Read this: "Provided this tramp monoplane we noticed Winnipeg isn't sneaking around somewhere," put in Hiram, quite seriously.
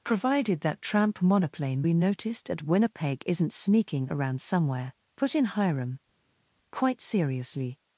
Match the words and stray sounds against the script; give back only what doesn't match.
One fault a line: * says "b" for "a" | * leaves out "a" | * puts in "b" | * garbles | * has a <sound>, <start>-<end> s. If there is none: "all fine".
* says "that" for "this"
* puts in "at"